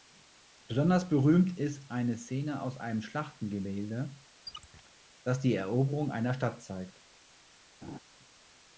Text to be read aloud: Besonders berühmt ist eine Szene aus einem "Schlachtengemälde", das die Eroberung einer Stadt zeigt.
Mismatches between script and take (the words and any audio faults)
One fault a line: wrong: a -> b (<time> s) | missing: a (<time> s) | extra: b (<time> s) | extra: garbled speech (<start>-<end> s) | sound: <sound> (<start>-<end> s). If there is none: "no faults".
sound: squeak (4.5-4.9 s)
sound: laugh (7.8-8.0 s)